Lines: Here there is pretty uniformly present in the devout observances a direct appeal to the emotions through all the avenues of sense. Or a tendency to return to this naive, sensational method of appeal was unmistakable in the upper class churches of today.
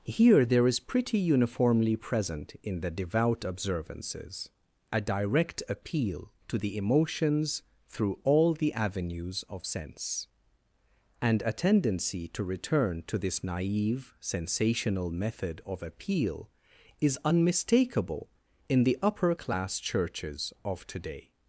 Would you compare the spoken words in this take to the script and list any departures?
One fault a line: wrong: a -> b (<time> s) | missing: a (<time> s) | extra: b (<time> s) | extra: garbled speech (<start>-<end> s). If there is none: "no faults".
wrong: Or -> And (11.2 s)
wrong: was -> is (17.0 s)